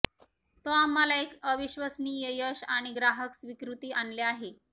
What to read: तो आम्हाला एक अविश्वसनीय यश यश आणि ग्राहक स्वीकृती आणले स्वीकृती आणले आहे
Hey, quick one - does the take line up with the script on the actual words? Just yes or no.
no